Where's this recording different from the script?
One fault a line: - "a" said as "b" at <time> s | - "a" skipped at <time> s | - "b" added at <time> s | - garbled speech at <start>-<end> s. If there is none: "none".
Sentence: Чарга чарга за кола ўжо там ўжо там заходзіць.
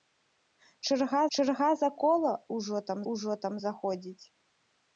none